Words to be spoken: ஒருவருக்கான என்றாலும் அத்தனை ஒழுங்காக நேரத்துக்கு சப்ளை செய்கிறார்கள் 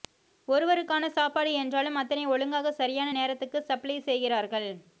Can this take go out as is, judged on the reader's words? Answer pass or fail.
fail